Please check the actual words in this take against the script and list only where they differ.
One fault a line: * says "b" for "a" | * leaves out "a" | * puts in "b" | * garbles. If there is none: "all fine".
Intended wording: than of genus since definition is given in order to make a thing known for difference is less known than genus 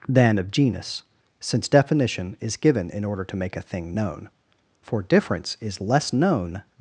* leaves out "than genus"